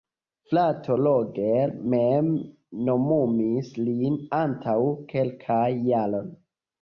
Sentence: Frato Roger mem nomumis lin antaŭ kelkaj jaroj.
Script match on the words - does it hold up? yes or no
yes